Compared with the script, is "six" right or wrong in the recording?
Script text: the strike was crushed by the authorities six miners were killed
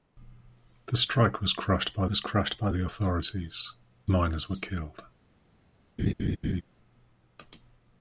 wrong